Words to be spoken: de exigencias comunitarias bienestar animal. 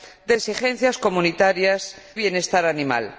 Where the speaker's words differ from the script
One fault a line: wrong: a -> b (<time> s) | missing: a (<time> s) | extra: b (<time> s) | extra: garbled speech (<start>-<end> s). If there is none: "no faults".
no faults